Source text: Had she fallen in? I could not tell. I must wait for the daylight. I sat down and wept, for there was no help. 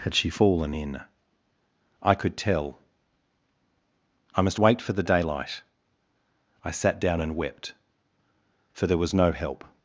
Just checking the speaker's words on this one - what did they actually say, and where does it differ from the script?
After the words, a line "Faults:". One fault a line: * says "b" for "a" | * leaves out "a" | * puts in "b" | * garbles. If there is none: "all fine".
Had she fallen in? I could tell. I must wait for the daylight. I sat down and wept, for there was no help.
Faults:
* leaves out "not"